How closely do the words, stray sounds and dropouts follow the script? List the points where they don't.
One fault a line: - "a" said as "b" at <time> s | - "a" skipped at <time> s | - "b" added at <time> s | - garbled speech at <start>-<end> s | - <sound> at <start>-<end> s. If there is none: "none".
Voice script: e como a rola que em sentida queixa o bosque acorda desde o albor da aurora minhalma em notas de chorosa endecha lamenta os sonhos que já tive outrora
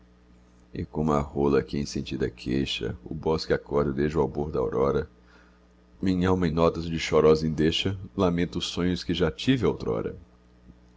none